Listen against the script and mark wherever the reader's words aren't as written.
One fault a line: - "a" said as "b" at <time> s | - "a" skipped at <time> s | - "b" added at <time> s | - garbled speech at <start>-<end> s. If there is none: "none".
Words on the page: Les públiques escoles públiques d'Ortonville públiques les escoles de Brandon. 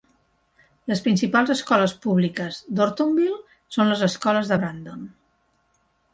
- "públiques" said as "principals" at 1.1 s
- "públiques" said as "són" at 3.8 s